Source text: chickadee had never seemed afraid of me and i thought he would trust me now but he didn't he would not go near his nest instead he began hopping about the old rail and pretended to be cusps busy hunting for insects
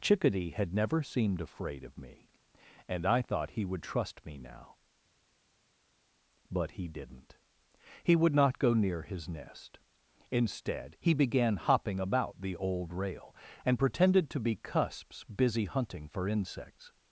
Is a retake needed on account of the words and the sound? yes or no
no